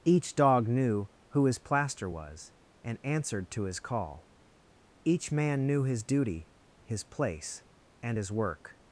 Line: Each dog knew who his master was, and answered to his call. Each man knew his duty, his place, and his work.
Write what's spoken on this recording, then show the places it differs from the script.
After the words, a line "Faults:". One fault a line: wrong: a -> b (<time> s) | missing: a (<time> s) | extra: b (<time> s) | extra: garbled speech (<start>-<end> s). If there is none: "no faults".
Each dog knew who his plaster was, and answered to his call. Each man knew his duty, his place, and his work.
Faults:
wrong: master -> plaster (1.6 s)